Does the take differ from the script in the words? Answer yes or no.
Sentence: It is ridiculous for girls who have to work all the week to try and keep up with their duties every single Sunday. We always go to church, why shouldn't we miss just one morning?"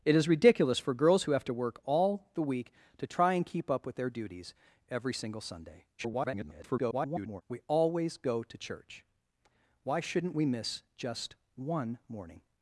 yes